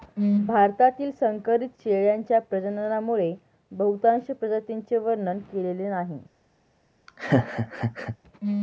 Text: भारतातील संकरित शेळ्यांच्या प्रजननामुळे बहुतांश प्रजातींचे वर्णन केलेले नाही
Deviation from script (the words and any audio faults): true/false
true